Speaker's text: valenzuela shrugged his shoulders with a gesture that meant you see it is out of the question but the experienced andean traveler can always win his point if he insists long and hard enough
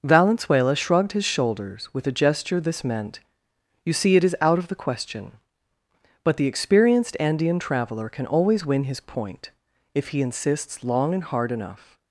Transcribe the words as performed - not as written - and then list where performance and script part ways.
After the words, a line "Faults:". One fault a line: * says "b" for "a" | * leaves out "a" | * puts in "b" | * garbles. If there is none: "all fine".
valenzuela shrugged his shoulders with a gesture this meant you see it is out of the question but the experienced andean traveler can always win his point if he insists long and hard enough
Faults:
* says "this" for "that"